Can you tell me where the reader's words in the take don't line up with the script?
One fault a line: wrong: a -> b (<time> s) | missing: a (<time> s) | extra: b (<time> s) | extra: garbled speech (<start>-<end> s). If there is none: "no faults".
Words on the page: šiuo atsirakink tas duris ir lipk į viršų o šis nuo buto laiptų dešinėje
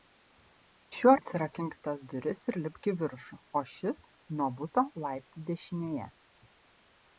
no faults